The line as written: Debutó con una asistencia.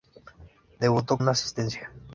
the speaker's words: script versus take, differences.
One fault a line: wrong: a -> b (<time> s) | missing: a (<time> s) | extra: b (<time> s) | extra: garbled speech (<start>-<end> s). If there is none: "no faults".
missing: con (1.2 s)